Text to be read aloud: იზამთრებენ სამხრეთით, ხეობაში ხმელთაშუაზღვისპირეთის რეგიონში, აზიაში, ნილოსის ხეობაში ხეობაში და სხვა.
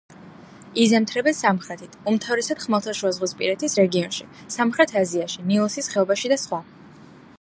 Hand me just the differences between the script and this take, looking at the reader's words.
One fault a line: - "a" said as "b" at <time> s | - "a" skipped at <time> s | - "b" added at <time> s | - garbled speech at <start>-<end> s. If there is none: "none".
- "ხეობაში" said as "უმთავრესად" at 2.1 s
- "სამხრეთ" added at 4.6 s
- "ხეობაში" skipped at 6.3 s